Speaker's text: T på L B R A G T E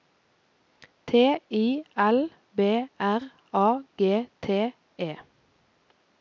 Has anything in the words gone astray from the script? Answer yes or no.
yes